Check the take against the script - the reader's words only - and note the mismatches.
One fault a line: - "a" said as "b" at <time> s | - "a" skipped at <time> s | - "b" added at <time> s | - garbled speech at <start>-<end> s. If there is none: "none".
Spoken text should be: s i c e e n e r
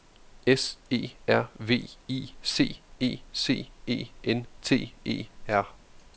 - "e r v" added at 0.9 s
- "c" added at 3.3 s
- "t" added at 4.6 s